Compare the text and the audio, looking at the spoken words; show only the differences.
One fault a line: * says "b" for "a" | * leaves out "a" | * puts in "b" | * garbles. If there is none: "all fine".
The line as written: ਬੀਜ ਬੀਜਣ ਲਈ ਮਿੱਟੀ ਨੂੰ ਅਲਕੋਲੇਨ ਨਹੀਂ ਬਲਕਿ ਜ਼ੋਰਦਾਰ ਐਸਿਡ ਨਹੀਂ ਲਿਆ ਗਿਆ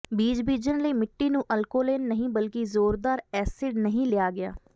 all fine